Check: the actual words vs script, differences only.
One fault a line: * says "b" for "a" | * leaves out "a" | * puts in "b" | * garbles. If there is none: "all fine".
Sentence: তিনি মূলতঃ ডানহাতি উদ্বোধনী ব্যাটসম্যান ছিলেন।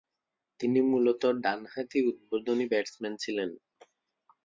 all fine